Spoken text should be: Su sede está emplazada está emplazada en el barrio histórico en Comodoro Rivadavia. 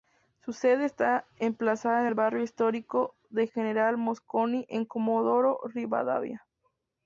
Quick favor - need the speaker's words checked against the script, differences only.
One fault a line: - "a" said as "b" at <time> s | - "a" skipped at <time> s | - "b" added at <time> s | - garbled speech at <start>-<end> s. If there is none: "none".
- "está emplazada" skipped at 2.0 s
- "de General Mosconi" added at 3.3 s